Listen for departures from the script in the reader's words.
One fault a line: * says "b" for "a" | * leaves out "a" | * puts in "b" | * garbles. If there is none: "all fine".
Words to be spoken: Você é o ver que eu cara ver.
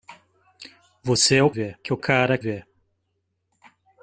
all fine